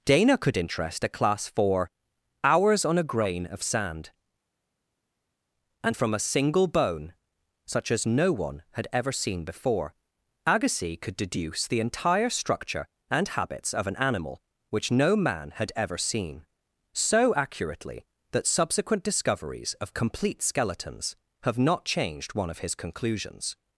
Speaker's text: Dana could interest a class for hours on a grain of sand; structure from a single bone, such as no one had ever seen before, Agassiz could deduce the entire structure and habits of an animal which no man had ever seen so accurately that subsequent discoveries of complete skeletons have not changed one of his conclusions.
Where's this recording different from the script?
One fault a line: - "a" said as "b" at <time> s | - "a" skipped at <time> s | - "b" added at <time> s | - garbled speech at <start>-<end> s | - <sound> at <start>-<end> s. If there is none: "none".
- "structure" said as "and" at 5.8 s